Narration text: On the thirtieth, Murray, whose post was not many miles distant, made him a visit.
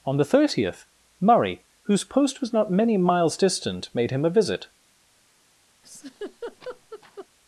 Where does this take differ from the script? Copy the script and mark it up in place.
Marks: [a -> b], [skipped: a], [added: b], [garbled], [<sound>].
On the thirtieth, Murray, whose post was not many miles distant, made him a visit. [laugh]